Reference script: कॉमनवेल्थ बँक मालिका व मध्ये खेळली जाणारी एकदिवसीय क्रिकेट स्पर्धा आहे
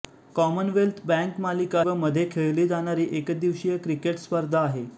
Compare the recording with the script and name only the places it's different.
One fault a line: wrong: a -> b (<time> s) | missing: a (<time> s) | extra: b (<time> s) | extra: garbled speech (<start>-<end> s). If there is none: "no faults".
no faults